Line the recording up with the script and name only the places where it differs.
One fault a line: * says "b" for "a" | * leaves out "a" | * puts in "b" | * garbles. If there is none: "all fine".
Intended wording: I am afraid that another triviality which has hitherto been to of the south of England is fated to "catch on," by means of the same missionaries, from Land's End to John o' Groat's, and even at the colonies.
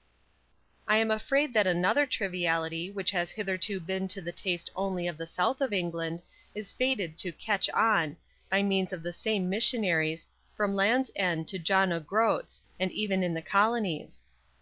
* puts in "the taste only"
* says "in" for "at"